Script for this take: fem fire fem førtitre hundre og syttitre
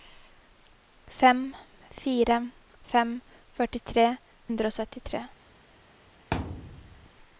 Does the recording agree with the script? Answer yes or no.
yes